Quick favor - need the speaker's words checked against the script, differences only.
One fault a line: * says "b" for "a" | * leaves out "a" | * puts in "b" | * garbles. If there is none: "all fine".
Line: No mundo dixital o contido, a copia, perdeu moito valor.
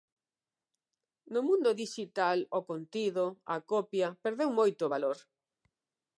all fine